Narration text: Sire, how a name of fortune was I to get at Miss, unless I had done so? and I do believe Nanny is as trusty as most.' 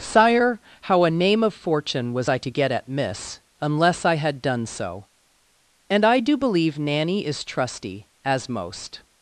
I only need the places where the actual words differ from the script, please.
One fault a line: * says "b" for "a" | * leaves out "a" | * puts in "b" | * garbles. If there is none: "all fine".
* leaves out "as"